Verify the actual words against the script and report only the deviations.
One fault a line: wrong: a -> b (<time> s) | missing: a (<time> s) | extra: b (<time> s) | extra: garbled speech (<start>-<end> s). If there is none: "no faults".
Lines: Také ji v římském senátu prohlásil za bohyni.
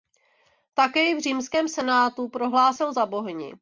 no faults